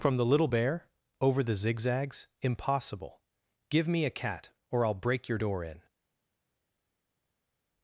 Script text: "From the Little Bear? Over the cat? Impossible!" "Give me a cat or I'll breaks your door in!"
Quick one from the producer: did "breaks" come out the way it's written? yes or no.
no